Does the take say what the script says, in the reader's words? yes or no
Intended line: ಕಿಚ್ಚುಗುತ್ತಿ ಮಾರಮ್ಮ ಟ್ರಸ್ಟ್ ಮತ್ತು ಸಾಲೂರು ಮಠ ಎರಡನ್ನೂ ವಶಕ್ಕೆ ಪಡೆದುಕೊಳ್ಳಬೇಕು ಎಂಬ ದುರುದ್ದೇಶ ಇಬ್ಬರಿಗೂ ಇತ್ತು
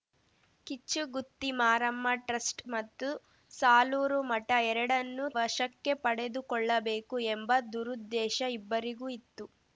yes